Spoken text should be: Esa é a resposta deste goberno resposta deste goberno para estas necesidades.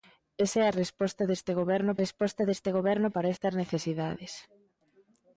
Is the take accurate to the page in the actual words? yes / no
yes